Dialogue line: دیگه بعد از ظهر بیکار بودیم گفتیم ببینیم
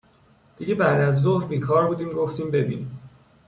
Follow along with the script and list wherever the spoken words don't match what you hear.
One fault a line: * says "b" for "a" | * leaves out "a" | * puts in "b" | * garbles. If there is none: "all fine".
all fine